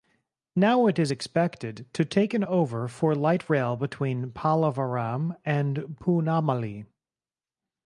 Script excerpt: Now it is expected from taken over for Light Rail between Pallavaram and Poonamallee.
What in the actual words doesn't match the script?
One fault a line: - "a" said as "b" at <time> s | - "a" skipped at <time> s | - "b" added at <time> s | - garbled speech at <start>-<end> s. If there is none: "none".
- "from" said as "to" at 1.9 s